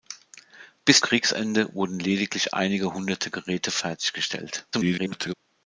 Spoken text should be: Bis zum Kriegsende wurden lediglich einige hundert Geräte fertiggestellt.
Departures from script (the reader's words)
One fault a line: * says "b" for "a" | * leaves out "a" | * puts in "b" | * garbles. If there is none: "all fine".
* leaves out "zum"
* garbles